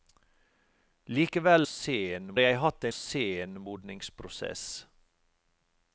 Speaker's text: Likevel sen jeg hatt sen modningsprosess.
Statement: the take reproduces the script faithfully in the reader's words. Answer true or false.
true